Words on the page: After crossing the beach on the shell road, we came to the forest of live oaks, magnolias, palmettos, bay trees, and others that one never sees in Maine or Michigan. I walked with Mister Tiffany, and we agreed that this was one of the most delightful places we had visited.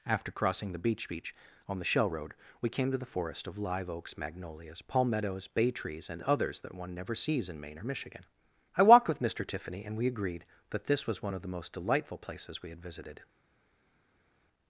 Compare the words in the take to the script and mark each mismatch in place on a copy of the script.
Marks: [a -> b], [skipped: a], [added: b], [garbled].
After crossing the beach [added: beach] on the shell road, we came to the forest of live oaks, magnolias, palmettos, bay trees, and others that one never sees in Maine or Michigan. I walked with Mister Tiffany, and we agreed that this was one of the most delightful places we had visited.